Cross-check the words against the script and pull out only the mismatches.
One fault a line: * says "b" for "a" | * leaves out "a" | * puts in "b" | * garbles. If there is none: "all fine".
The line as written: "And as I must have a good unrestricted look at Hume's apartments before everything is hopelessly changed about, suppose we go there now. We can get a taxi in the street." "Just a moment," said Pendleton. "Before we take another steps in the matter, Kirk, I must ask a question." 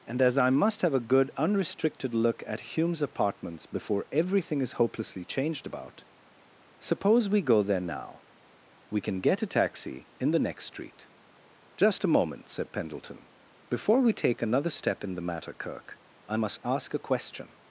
* puts in "next"
* says "step" for "steps"